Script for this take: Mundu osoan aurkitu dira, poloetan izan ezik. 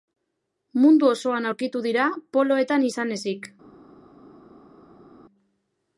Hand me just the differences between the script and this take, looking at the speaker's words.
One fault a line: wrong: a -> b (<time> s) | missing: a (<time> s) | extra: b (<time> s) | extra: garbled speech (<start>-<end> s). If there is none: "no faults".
no faults